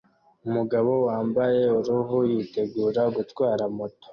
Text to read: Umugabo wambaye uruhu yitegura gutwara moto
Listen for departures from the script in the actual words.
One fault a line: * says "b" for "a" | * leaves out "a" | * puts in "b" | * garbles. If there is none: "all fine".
all fine